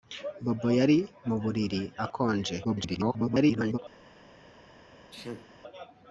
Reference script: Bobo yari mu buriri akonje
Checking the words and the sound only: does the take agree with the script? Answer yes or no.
no